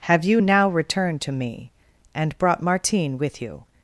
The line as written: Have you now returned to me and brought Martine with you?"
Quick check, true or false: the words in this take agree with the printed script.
true